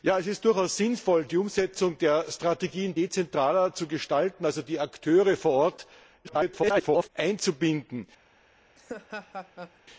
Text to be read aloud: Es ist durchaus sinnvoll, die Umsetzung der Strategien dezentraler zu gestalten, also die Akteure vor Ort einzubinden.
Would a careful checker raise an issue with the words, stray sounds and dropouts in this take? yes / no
yes